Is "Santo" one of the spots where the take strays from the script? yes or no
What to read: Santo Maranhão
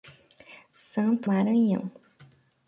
no